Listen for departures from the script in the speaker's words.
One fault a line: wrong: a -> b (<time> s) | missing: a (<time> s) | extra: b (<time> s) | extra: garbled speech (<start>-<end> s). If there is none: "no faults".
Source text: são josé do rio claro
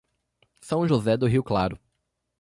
no faults